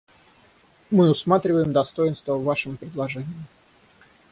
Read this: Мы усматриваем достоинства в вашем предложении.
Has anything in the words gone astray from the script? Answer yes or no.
no